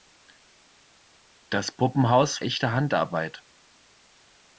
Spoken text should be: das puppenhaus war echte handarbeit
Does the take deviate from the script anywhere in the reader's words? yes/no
yes